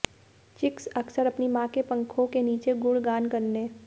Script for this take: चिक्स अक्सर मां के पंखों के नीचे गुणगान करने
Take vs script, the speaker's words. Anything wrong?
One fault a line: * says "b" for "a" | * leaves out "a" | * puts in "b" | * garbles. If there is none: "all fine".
* puts in "अपनी"